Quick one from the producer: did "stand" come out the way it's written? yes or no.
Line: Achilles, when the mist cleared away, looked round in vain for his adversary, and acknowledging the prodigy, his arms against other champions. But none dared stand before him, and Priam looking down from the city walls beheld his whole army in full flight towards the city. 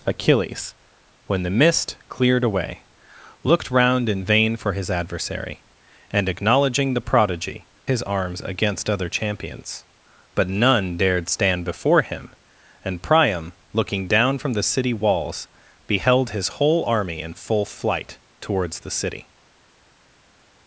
yes